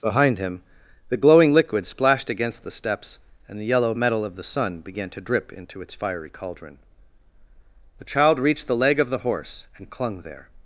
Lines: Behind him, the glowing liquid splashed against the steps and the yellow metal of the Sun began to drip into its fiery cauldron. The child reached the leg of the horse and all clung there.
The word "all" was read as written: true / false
false